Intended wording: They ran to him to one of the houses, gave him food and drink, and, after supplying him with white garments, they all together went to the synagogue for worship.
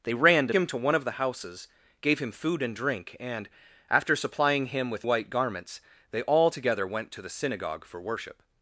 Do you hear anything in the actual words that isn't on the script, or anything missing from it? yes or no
no